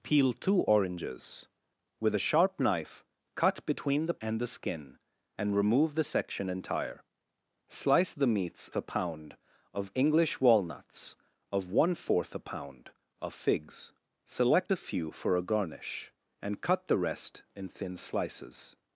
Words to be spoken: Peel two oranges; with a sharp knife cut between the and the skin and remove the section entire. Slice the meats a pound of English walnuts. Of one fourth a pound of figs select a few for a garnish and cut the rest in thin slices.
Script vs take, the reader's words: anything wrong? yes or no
no